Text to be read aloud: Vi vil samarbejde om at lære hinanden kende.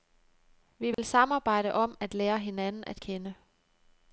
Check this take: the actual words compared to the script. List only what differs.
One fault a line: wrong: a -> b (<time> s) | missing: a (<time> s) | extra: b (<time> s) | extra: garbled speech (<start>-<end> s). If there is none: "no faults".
extra: at (2.9 s)